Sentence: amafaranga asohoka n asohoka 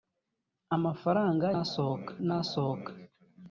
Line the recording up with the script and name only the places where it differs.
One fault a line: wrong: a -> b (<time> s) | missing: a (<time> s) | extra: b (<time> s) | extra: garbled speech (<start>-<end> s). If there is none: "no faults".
no faults